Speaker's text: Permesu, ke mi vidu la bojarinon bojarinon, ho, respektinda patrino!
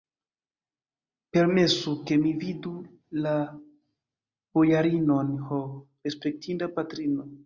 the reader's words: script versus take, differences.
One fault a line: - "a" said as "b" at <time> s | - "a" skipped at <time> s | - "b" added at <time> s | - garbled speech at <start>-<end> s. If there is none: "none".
- "bojarinon" skipped at 5.3 s